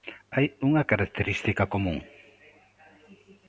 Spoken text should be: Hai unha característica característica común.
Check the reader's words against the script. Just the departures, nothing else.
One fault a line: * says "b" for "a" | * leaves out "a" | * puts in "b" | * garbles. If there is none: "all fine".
* leaves out "característica"